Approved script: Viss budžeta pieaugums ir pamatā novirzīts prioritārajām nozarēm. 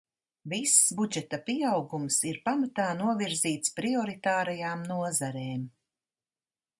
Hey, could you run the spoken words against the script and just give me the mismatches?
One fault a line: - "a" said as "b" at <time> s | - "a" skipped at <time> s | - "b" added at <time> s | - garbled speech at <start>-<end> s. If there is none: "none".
none